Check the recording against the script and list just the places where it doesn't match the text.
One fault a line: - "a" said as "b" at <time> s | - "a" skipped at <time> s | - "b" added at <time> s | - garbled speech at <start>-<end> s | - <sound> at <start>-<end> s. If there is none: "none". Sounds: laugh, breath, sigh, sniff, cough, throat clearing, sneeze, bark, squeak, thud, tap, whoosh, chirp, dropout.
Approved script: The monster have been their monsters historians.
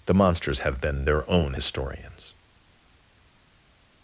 - "monster" said as "monsters" at 0.1 s
- "monsters" said as "own" at 1.3 s